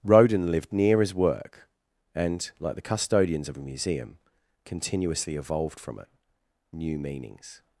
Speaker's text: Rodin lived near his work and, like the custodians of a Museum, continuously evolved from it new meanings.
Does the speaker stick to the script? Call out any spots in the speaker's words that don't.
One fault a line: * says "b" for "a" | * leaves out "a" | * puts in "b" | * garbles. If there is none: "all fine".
all fine